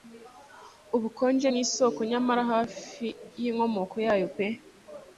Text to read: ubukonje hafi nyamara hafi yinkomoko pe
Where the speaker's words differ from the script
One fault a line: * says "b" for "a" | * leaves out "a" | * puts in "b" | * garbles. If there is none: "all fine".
* says "nkisoko" for "hafi"
* puts in "yayo"